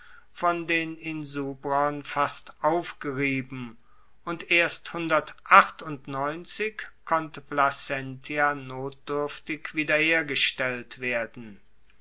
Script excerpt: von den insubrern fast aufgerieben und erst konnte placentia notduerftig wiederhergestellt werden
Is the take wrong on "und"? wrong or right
right